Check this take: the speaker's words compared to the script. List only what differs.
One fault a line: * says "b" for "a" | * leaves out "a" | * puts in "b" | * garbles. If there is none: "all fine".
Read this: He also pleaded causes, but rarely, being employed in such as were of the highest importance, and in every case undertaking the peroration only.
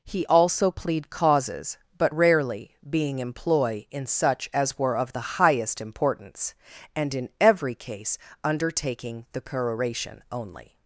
* says "plead" for "pleaded"
* says "employ" for "employed"